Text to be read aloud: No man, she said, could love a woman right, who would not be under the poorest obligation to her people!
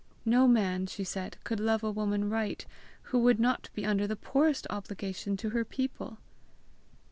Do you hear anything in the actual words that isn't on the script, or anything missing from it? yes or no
no